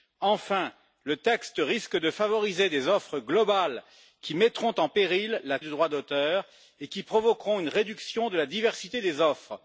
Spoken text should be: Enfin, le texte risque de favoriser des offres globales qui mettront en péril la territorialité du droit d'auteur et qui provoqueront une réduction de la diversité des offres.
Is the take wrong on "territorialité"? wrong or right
wrong